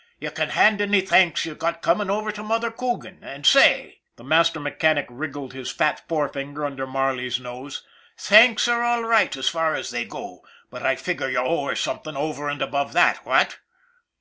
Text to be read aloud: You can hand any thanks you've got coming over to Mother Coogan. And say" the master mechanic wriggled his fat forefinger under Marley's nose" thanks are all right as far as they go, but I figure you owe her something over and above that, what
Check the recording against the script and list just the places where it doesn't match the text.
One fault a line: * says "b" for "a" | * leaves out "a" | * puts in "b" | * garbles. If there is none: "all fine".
all fine